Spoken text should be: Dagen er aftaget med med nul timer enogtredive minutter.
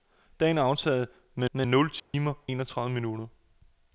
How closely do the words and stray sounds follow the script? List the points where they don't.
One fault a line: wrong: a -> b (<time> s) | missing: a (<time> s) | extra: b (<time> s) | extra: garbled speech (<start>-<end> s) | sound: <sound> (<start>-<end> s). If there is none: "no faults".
sound: dropout (2.0-2.1 s)